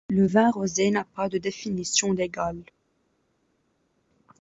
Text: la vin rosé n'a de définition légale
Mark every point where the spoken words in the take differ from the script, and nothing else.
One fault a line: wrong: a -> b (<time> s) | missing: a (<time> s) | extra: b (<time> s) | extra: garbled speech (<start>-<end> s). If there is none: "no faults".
wrong: la -> le (0.1 s)
extra: pas (1.1 s)